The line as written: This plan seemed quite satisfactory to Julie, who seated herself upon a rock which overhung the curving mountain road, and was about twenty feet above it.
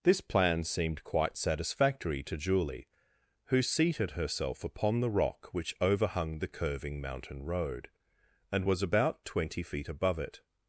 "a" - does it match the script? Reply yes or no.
no